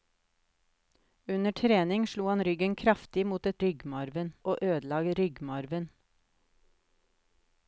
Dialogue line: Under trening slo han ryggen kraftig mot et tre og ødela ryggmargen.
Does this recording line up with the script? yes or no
no